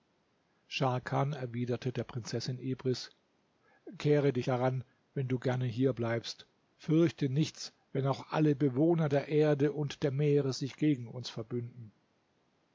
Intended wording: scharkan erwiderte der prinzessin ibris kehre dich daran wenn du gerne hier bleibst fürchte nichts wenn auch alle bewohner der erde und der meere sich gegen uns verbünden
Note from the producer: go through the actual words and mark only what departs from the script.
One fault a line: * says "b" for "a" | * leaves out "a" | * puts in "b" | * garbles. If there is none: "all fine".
all fine